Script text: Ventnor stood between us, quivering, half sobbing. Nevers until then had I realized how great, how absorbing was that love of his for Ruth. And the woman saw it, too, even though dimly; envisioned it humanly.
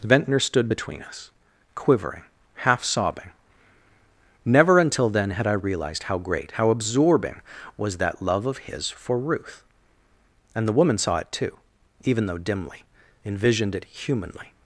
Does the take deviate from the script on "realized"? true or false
false